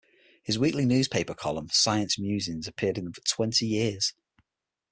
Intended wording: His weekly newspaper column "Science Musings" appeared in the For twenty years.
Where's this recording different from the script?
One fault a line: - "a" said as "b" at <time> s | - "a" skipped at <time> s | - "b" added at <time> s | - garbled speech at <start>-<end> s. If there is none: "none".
none